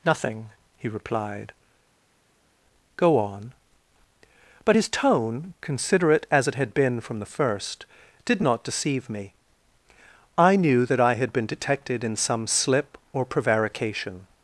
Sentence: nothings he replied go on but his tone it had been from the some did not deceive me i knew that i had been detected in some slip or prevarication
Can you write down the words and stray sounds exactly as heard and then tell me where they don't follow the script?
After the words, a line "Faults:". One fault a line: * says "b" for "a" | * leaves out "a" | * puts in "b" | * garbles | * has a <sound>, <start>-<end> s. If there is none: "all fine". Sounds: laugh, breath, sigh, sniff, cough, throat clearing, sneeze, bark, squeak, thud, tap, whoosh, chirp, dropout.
nothing he replied go on but his tone considerate as it had been from the first did not deceive me i knew that i had been detected in some slip or prevarication
Faults:
* says "nothing" for "nothings"
* puts in "considerate as"
* says "first" for "some"